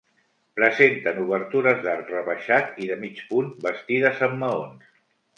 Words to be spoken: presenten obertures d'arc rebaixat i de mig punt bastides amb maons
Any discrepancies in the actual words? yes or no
no